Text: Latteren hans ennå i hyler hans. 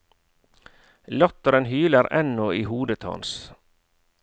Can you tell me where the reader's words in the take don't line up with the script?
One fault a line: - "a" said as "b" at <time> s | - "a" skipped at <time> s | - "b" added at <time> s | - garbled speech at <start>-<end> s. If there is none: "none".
- "hans" said as "hyler" at 1.6 s
- "hyler" said as "hodet" at 2.6 s